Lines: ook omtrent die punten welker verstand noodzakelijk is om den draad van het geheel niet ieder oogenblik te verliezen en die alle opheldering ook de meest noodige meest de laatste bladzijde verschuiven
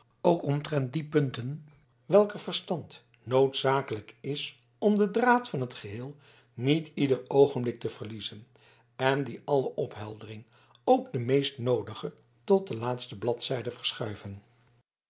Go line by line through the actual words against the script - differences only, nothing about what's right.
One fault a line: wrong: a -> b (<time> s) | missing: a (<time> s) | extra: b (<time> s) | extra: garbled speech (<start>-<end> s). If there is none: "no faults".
wrong: meest -> tot (12.4 s)